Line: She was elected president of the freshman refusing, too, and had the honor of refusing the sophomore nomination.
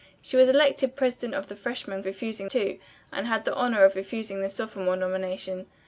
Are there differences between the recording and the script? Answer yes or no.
no